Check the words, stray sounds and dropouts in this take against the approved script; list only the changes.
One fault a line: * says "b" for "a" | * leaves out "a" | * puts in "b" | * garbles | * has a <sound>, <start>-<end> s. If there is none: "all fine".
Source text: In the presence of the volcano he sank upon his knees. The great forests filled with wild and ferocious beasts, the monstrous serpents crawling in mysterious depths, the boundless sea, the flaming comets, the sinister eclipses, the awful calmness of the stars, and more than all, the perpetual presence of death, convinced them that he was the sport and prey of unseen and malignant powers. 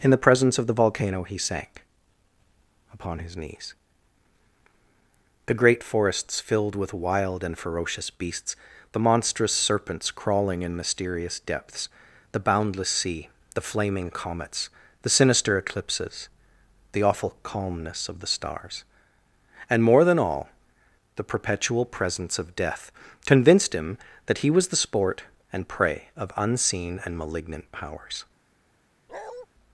* says "him" for "them"
* has a bark, 29.1-29.5 s